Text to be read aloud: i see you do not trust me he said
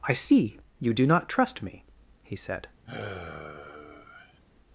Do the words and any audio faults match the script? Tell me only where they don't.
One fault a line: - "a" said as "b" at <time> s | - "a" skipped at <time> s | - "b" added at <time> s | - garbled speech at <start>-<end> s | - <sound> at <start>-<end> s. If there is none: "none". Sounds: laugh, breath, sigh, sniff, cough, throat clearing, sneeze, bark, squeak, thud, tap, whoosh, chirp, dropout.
- sigh at 2.9-4.4 s